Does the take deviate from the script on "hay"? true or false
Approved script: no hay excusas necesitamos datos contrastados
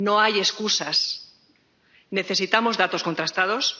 false